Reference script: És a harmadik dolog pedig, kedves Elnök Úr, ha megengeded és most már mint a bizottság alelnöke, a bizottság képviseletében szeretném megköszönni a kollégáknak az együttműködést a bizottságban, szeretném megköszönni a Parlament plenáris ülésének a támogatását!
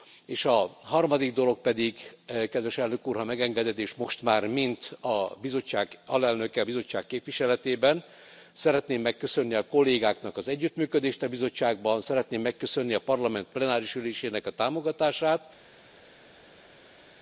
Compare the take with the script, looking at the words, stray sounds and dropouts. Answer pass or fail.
pass